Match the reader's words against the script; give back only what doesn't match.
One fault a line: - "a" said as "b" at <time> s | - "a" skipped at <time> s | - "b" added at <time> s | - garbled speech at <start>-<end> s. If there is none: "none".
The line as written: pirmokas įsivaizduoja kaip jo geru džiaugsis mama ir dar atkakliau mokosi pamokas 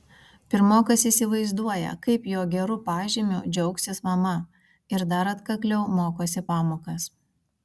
- "pažymiu" added at 2.9 s